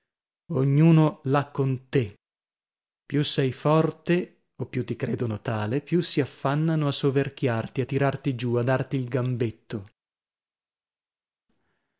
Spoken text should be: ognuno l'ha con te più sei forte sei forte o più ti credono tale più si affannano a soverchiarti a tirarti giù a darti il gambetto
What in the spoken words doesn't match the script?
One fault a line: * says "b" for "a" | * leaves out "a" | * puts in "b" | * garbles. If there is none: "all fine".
* leaves out "sei forte"